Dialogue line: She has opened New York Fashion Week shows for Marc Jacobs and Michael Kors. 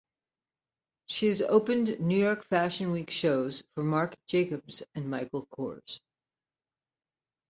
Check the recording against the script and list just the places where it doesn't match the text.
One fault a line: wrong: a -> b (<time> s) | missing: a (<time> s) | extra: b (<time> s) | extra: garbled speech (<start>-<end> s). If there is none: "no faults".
no faults